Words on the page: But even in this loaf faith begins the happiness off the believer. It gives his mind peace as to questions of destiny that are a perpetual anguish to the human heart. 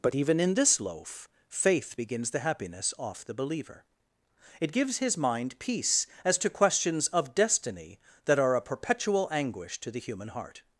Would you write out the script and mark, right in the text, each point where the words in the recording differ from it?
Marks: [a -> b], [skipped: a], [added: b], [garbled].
But even in this loaf faith begins the happiness off the believer. It gives his mind peace as to questions of destiny that are a perpetual anguish to the human heart.